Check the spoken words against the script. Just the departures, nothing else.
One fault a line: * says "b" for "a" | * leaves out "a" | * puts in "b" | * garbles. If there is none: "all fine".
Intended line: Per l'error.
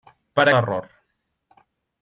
all fine